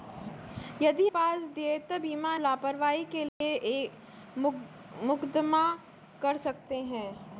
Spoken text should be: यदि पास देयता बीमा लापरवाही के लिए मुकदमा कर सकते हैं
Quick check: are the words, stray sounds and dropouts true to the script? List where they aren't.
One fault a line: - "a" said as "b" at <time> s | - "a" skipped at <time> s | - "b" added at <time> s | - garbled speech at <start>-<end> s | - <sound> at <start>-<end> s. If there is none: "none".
- dropout at 3.3-3.4 s